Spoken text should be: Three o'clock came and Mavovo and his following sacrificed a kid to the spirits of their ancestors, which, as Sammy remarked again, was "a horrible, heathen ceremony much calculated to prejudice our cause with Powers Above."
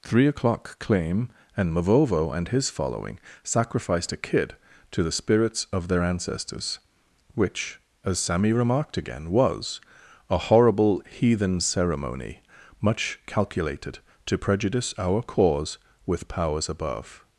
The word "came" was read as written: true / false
false